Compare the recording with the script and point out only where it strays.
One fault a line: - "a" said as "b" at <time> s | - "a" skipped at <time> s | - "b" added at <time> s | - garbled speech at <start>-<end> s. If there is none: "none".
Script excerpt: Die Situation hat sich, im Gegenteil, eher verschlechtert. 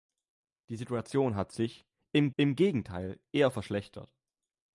- "im" added at 2.4 s